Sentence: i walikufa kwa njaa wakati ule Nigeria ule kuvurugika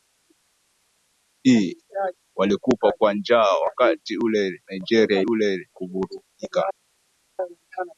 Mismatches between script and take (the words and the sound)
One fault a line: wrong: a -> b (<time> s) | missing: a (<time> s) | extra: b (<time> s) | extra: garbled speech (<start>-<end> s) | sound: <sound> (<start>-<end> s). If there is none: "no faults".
no faults